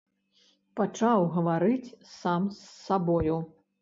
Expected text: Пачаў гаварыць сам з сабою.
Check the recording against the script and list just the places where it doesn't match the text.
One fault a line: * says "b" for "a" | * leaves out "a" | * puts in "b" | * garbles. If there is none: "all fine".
all fine